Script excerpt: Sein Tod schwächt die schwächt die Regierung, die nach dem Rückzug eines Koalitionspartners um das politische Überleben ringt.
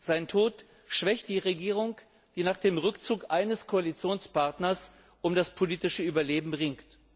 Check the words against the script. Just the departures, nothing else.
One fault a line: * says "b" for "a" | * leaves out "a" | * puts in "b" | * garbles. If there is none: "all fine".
* leaves out "schwächt die"